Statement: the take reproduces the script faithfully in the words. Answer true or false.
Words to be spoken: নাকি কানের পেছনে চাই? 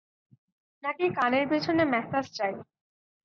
false